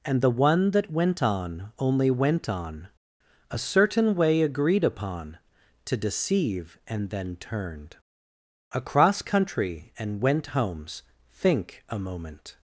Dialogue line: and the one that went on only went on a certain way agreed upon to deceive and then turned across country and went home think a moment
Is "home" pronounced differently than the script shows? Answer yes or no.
yes